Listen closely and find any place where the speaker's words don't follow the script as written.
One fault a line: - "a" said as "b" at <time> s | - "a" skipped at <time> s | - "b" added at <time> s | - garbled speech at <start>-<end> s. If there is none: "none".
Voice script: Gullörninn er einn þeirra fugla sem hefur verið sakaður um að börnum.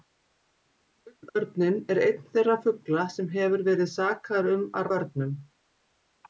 none